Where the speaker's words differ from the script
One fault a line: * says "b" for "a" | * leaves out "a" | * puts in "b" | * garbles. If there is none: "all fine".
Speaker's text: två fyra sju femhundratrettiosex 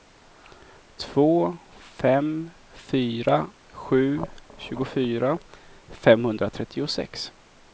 * puts in "fem"
* puts in "tjugofyra"